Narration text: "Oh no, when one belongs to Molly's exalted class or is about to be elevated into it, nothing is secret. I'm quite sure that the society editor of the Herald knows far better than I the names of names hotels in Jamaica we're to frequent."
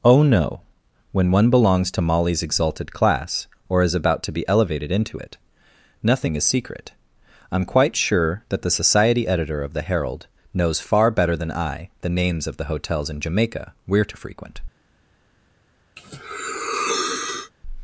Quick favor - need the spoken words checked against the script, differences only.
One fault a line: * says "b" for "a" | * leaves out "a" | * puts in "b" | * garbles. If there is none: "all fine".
* says "the" for "names"